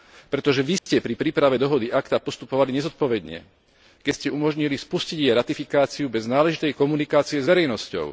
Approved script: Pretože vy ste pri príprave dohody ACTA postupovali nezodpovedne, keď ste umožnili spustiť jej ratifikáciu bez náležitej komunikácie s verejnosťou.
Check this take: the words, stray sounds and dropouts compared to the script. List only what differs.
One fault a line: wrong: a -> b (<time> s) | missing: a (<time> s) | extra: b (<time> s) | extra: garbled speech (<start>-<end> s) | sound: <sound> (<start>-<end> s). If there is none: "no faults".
sound: dropout (0.8-0.9 s)